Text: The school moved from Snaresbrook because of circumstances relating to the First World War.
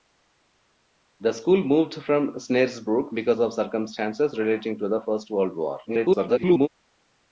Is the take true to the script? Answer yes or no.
no